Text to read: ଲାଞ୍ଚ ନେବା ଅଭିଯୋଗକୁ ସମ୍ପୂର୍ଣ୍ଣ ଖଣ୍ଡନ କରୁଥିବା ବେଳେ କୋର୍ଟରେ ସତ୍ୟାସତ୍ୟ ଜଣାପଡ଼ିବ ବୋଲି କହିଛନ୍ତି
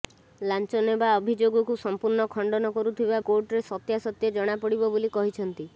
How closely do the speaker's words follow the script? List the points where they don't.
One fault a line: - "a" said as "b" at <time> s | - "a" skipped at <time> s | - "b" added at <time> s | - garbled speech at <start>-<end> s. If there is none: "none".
- "ବେଳେ" skipped at 3.2 s